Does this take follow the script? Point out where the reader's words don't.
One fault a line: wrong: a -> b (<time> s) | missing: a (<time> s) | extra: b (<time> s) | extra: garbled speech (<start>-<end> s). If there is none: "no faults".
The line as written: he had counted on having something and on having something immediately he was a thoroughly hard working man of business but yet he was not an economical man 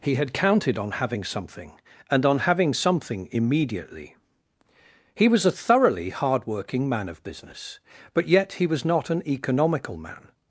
no faults